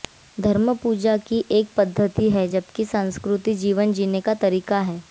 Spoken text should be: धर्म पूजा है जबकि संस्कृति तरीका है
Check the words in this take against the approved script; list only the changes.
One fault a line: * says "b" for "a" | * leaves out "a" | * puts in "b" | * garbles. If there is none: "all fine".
* puts in "की एक पद्धति"
* puts in "जीवन जीने का"